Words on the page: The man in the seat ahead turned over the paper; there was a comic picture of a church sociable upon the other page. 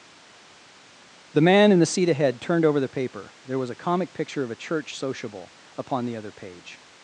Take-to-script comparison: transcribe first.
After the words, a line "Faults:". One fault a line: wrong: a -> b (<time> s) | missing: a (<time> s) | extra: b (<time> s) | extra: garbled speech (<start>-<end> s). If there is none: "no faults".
The man in the seat ahead turned over the paper; there was a comic picture of a church sociable upon the other page.
Faults:
no faults